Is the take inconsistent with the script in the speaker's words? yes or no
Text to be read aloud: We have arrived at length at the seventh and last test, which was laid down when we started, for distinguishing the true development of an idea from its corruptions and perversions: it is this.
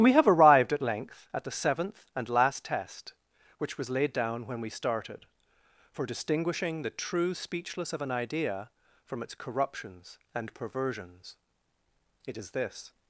yes